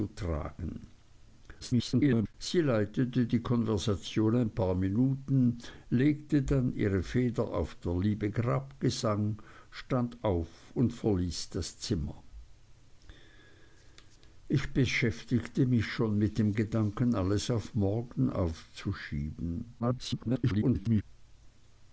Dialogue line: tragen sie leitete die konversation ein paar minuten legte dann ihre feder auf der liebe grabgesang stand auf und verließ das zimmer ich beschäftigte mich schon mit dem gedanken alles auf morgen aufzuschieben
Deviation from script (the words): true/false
true